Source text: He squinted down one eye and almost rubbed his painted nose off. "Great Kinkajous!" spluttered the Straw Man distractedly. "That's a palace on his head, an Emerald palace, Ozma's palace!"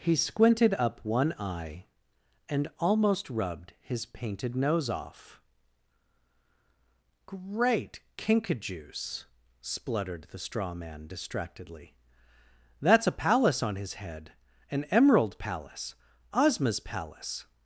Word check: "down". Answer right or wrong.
wrong